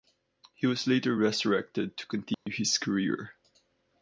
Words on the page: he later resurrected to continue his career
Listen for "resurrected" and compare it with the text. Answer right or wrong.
right